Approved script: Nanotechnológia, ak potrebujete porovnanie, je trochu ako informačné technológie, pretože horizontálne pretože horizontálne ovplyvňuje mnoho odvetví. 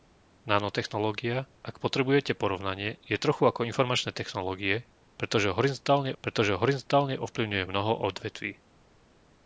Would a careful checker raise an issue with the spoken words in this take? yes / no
no